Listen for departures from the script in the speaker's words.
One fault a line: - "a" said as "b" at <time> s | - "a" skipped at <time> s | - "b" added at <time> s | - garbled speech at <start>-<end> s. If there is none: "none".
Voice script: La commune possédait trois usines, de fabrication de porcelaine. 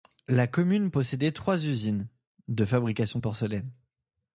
none